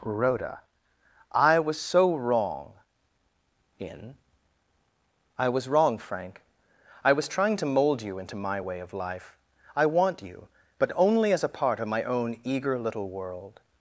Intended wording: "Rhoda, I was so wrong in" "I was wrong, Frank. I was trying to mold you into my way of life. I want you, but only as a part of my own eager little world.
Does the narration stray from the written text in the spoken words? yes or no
no